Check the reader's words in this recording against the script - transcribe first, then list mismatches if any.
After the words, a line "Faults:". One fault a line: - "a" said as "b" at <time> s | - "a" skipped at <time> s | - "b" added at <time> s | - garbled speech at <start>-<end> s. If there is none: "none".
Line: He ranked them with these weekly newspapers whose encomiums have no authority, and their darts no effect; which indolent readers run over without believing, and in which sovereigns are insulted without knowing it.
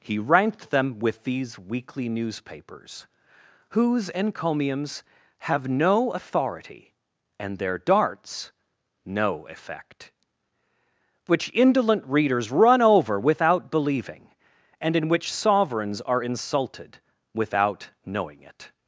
He ranked them with these weekly newspapers whose encomiums have no authority, and their darts no effect; which indolent readers run over without believing, and in which sovereigns are insulted without knowing it.
Faults:
none